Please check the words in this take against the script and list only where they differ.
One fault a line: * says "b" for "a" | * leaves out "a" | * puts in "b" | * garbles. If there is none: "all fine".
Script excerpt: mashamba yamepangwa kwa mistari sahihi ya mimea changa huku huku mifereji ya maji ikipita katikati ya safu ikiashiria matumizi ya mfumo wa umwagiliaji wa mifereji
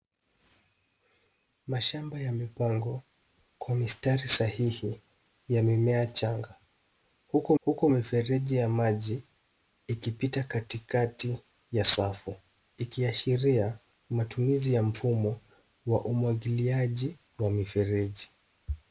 all fine